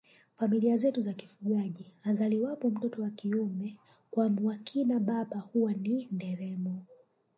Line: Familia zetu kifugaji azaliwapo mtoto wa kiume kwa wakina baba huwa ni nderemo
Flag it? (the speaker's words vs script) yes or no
yes